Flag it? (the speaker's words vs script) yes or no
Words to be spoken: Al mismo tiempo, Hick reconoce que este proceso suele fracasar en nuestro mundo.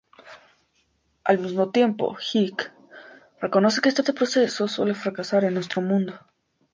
yes